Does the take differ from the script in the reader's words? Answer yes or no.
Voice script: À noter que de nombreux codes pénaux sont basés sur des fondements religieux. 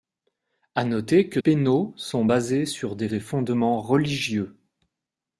yes